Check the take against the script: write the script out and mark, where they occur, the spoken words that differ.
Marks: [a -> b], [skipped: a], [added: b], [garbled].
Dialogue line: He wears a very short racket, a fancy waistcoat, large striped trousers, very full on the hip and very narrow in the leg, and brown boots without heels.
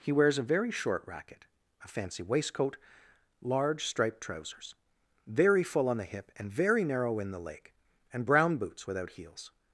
He wears a very short racket, a fancy waistcoat, large striped trousers, very full on the hip and very narrow in the leg, and brown boots without heels.